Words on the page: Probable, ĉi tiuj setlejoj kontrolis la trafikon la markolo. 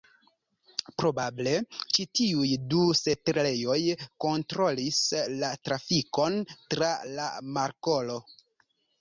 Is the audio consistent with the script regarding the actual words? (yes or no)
no